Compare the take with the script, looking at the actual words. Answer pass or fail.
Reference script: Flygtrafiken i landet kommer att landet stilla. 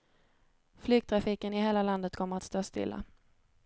fail